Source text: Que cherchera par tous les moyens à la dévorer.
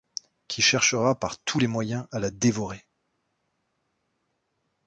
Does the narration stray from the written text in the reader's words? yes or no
yes